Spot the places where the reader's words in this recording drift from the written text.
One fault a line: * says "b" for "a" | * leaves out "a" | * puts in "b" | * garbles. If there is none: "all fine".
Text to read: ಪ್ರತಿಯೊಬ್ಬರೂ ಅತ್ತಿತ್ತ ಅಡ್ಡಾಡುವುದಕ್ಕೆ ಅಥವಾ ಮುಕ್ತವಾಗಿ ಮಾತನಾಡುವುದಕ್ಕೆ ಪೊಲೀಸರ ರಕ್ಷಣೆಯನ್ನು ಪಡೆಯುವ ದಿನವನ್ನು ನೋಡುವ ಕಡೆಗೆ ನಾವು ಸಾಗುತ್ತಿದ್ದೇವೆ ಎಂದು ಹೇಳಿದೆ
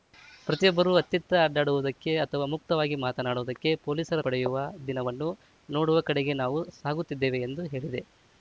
* leaves out "ರಕ್ಷಣೆಯನ್ನು"